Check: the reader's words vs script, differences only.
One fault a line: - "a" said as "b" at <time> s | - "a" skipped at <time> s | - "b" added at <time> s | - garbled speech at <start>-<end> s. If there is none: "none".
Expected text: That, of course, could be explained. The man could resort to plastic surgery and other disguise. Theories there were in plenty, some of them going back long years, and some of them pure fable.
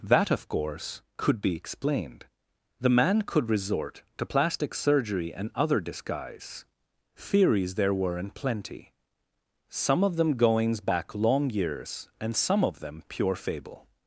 - "going" said as "goings" at 10.4 s